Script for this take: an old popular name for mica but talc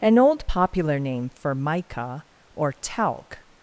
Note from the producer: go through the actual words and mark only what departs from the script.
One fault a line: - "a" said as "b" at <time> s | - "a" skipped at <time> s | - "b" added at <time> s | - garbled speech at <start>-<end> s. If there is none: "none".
- "but" said as "or" at 2.5 s